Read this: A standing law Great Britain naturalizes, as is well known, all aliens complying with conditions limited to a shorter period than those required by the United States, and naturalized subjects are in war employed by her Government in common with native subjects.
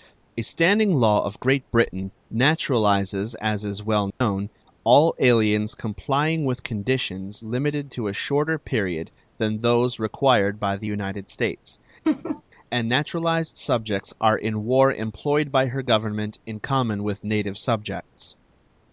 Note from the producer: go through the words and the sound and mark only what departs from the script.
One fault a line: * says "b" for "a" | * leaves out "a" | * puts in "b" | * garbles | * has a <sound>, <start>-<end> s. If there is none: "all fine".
* puts in "of"
* has a dropout, 4.1-4.2 s
* has a laugh, 12.0-12.4 s